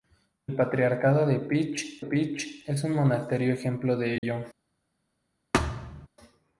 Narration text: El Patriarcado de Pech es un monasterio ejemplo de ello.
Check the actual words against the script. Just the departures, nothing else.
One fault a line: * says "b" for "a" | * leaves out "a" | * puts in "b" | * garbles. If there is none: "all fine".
* puts in "Pech"